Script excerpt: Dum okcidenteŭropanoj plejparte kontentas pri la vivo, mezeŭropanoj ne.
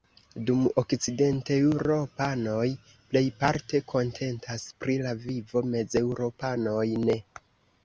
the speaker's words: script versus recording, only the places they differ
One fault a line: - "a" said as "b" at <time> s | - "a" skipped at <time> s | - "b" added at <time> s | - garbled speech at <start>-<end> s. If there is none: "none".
none